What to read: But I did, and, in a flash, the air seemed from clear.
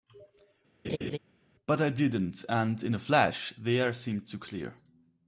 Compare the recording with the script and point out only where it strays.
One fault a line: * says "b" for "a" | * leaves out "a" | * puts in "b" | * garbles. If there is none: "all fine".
* says "didn't" for "did"
* says "to" for "from"